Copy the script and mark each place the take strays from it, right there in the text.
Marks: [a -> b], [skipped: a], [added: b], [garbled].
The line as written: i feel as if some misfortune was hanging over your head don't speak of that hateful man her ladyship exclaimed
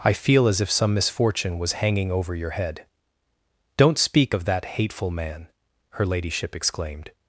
i feel as if some misfortune was hanging over your head don't speak of that hateful man her ladyship exclaimed